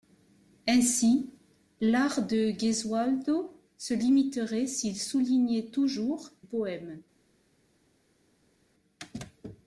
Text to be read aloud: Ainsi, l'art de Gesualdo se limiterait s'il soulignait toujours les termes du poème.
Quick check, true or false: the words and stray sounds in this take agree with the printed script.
false